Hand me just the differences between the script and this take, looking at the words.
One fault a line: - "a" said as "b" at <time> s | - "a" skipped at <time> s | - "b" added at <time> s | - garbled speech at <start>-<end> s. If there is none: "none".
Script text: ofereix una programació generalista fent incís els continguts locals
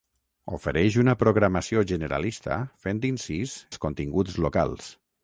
none